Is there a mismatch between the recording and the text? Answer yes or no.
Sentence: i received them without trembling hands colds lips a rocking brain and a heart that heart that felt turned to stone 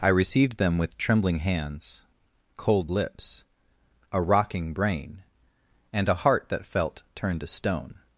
yes